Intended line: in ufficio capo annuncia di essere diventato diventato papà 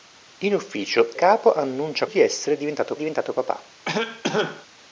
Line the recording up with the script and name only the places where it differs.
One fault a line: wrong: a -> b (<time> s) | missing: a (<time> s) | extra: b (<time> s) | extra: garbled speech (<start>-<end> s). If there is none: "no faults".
no faults